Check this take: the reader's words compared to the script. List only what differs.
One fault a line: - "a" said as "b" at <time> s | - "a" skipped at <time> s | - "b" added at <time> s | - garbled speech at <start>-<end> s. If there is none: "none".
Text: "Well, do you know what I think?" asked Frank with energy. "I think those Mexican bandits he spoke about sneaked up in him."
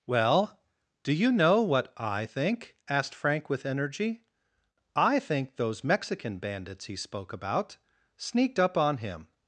- "in" said as "on" at 8.8 s